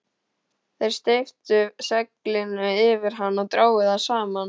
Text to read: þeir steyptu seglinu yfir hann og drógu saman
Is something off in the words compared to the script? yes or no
yes